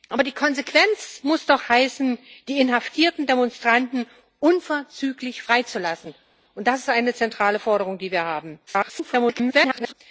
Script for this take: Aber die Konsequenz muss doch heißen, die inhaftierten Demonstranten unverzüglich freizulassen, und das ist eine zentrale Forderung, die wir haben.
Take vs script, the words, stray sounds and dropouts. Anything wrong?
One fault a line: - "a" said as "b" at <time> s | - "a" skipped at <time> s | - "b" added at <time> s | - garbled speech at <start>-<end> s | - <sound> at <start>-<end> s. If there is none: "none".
- garbled speech at 8.7-9.9 s